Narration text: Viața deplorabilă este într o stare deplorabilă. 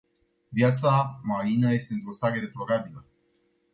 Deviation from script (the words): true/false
true